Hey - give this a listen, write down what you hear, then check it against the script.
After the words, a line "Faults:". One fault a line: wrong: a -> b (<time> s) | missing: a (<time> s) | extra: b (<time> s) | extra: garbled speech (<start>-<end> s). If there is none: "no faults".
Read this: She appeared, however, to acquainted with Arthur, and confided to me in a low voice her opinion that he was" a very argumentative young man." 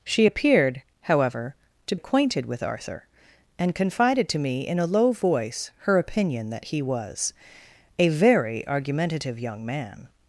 She appeared, however, to acquainted with Arthur, and confided to me in a low voice her opinion that he was" a very argumentative young man."
Faults:
no faults